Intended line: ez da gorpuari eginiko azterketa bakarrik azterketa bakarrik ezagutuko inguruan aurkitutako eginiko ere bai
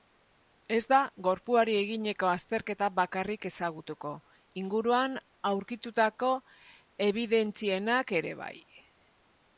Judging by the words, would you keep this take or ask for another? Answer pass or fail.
fail